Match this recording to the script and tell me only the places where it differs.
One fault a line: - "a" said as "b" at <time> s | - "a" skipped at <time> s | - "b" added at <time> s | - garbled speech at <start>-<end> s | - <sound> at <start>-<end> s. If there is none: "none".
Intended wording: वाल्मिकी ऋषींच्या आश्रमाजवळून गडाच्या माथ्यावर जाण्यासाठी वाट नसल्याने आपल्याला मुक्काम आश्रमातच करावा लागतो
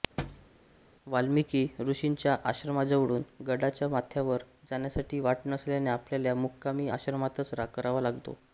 - thud at 0.2-0.5 s